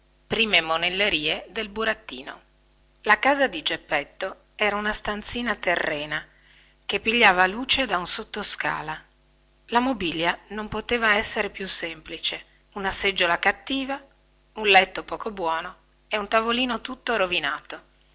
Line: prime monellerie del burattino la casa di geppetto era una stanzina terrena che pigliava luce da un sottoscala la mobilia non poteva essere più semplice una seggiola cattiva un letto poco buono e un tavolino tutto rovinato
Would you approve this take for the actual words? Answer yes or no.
yes